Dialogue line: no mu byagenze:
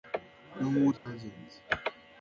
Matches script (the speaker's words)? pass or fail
pass